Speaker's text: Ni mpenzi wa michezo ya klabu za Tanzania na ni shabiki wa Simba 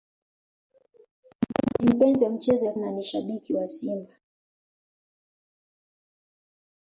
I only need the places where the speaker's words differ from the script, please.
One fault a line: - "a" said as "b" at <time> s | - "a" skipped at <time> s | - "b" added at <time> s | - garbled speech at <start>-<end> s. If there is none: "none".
- "klabu za Tanzania" skipped at 2.7 s